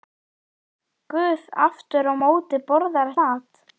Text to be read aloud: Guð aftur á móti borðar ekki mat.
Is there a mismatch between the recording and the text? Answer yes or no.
yes